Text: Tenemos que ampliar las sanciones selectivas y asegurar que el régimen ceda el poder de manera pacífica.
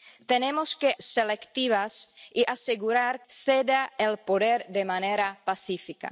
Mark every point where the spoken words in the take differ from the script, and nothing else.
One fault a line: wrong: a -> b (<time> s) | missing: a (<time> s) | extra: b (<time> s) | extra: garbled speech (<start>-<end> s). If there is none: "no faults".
missing: ampliar las sanciones (0.9 s)
missing: que el régimen (3.2 s)